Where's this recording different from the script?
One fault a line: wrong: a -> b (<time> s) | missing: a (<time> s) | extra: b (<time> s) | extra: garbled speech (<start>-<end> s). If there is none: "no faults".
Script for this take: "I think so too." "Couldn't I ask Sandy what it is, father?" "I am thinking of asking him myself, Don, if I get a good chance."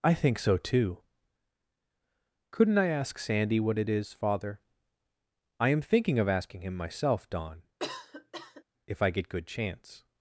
missing: a (9.3 s)